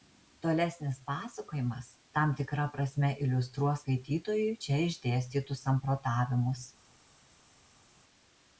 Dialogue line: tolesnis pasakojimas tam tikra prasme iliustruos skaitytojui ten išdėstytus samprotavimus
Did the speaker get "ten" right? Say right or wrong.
wrong